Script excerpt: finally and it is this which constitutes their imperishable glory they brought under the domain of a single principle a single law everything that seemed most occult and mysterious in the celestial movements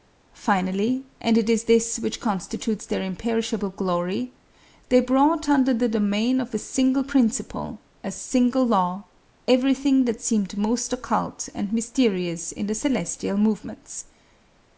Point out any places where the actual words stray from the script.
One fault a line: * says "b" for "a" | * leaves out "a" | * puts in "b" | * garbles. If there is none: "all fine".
all fine